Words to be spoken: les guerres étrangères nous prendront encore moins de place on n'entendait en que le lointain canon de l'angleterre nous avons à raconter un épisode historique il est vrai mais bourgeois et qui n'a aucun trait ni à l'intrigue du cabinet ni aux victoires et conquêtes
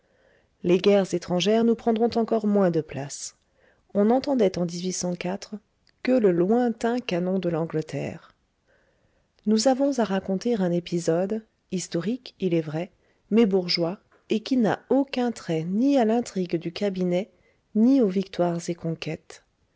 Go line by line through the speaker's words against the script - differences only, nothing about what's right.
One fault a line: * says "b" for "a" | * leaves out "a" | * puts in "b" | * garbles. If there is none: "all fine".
all fine